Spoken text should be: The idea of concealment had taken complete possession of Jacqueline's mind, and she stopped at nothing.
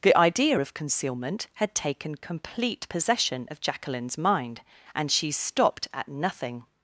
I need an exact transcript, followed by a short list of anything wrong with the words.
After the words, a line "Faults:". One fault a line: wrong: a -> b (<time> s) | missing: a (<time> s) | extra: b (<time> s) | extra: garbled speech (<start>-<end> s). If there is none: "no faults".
The idea of concealment had taken complete possession of Jacqueline's mind, and she stopped at nothing.
Faults:
no faults